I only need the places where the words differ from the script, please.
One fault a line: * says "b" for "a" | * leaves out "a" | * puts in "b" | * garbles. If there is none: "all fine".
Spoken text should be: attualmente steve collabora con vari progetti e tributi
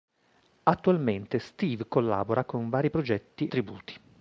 * leaves out "e"